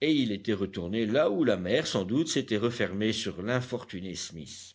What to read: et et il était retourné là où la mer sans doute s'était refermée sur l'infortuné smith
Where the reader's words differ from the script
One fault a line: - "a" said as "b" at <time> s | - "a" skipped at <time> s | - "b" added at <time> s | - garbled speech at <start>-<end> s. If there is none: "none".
- "et" skipped at 0.1 s